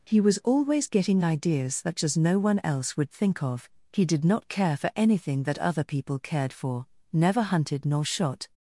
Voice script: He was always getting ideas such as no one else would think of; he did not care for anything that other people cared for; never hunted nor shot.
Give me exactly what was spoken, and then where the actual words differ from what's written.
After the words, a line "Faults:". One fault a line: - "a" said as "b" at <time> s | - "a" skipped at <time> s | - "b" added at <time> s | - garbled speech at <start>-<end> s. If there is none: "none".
He was always getting ideas such as no one else would think of; he did not care for anything that other people cared for; never hunted nor shot.
Faults:
none